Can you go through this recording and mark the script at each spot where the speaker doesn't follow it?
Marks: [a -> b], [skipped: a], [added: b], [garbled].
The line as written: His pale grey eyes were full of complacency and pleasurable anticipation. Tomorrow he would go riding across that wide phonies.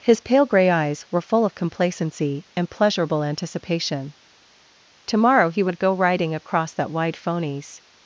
His pale grey eyes were full of complacency and pleasurable anticipation. Tomorrow he would go riding across that wide phonies.